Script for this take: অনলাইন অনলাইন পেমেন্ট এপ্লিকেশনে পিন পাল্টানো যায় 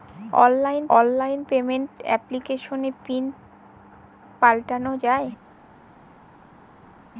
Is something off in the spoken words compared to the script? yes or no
no